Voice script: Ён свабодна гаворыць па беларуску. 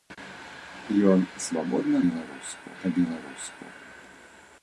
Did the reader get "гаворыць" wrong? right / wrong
wrong